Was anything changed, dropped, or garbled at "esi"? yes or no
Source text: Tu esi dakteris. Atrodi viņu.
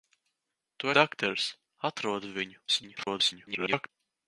yes